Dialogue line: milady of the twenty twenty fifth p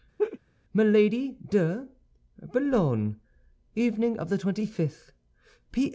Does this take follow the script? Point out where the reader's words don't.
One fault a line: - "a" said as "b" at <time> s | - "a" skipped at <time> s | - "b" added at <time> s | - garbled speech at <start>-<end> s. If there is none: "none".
- "de boulogne evening" added at 1.5 s
- "twenty" skipped at 4.7 s